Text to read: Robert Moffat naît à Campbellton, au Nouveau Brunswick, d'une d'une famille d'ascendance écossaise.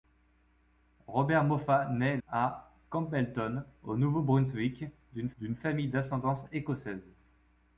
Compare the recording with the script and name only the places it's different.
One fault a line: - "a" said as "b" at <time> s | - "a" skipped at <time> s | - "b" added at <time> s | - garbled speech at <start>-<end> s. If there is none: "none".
none